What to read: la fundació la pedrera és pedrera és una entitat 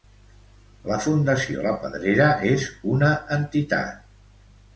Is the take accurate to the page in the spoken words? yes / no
no